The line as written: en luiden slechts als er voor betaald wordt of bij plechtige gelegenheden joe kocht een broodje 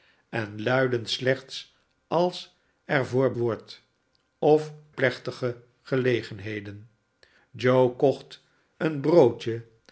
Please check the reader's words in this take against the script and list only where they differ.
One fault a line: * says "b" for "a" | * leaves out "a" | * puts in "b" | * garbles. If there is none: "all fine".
* leaves out "betaald"
* leaves out "bij"